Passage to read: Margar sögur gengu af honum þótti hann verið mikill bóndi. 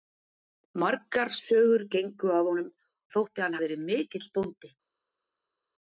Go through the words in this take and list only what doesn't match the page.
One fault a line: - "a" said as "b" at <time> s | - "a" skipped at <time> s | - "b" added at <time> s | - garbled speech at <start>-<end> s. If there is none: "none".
none